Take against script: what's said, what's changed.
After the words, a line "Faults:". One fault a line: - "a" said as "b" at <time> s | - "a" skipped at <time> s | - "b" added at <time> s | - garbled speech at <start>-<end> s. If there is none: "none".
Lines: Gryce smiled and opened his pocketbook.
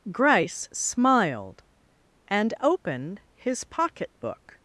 Gryce smiled and opened his pocketbook.
Faults:
none